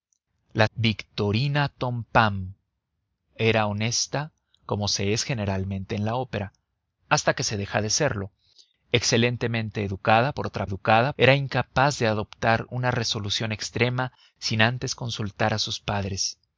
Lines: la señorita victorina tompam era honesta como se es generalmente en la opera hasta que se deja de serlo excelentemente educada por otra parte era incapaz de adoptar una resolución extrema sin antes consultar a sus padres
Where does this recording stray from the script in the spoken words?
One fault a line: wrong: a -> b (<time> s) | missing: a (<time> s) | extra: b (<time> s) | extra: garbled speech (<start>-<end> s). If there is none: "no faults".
missing: señorita (0.7 s)
wrong: parte -> educada (10.6 s)